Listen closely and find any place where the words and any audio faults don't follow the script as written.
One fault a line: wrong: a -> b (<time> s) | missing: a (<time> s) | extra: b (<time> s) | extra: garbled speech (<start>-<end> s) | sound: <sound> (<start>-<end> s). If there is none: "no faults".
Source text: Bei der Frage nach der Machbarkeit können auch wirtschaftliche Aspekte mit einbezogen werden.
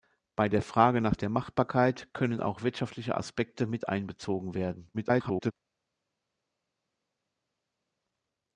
extra: garbled speech (4.9-5.5 s)